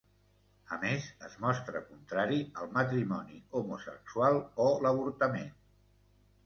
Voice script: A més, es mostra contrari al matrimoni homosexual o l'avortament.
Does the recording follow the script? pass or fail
pass